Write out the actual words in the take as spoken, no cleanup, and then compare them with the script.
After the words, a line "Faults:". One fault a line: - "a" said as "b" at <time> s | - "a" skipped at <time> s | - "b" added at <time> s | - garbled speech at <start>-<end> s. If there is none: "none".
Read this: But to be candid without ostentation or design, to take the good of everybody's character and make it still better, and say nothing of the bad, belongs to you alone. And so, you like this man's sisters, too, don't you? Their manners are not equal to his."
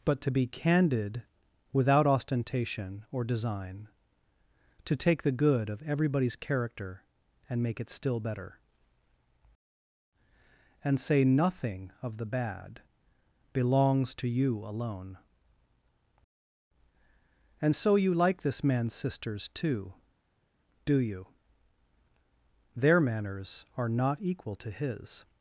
But to be candid without ostentation or design, to take the good of everybody's character and make it still better, and say nothing of the bad, belongs to you alone. And so, you like this man's sisters, too, do you? Their manners are not equal to his."
Faults:
- "don't" said as "do" at 20.8 s